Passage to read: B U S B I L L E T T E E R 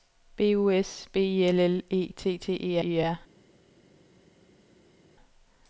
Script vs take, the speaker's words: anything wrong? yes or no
no